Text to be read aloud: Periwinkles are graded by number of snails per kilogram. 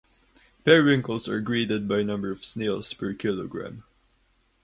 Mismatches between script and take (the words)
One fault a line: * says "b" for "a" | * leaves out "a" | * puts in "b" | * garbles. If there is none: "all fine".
all fine